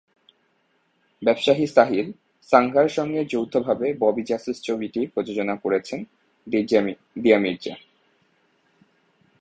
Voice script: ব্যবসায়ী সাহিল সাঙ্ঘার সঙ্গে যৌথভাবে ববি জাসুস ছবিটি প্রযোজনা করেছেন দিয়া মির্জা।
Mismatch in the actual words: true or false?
false